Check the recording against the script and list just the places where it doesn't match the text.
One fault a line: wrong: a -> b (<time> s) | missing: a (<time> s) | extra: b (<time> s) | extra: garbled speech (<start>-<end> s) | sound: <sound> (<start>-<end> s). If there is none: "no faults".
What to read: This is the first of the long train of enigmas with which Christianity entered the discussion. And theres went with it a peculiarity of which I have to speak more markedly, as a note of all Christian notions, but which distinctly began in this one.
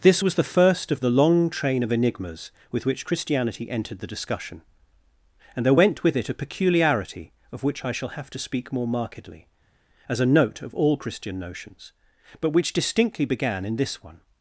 wrong: is -> was (0.2 s)
wrong: theres -> there (5.6 s)
extra: shall (7.9 s)